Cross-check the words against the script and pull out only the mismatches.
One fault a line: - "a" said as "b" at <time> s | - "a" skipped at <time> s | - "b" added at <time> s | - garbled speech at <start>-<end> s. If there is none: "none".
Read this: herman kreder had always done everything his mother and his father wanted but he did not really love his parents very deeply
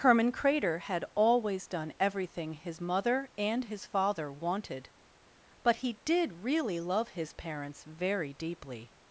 - "not" skipped at 6.4 s